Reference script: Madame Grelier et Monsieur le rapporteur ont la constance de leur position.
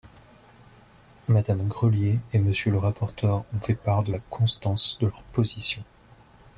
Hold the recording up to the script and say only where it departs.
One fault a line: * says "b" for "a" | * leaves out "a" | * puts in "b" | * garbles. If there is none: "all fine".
* puts in "fait part de"